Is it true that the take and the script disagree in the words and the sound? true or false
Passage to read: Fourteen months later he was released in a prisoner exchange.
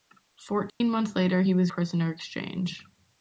true